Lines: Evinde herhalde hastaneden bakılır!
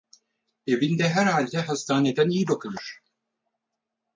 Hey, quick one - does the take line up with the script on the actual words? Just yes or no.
no